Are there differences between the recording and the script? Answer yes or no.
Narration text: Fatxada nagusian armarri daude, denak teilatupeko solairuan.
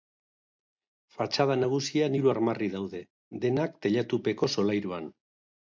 yes